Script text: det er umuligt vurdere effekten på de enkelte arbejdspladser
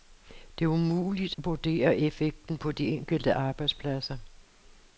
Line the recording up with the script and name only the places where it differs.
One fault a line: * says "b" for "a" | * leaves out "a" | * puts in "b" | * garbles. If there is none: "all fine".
all fine